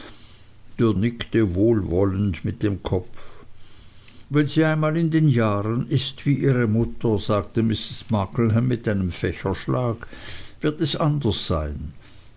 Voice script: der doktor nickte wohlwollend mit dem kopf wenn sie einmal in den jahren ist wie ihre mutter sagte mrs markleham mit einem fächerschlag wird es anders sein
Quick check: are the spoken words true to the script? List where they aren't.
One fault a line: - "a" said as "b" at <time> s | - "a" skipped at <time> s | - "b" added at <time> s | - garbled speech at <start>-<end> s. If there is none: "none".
- "doktor" skipped at 0.9 s